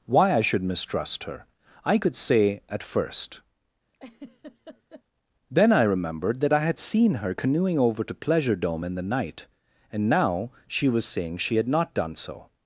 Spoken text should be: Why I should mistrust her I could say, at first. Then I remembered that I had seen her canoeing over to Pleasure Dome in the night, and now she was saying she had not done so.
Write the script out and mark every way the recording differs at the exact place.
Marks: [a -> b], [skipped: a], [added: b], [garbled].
Why I should mistrust her I could say, at first. Then I remembered that I had seen her canoeing over to Pleasure Dome in the night, and now she was saying she had not done so.